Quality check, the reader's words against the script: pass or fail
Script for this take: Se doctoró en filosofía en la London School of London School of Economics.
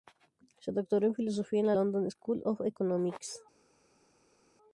fail